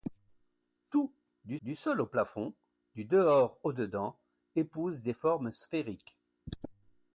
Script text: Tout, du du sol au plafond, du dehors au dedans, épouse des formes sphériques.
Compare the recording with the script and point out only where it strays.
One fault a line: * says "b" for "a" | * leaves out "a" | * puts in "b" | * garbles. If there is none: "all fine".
all fine